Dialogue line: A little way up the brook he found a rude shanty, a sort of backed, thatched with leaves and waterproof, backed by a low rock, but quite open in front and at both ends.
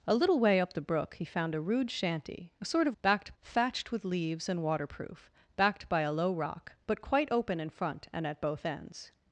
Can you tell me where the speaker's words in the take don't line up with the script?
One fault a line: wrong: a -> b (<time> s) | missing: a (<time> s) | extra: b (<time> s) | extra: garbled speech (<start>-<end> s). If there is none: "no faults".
no faults